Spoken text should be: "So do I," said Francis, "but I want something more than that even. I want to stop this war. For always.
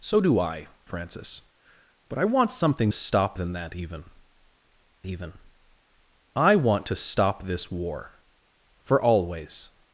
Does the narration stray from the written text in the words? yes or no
yes